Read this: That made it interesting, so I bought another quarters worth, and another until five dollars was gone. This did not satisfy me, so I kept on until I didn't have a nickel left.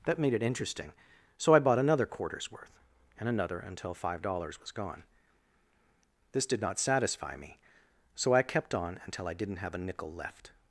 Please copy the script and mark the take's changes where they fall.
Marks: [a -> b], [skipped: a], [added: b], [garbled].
That made it interesting, so I bought another quarters worth, and another until five dollars was gone. This did not satisfy me, so I kept on until I didn't have a nickel left.